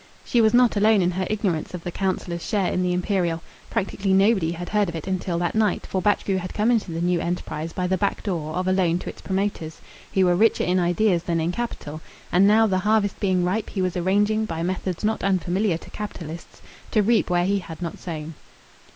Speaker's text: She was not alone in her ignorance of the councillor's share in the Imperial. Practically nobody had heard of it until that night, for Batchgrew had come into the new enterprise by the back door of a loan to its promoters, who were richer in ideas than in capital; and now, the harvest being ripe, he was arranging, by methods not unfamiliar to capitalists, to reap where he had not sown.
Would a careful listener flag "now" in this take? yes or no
no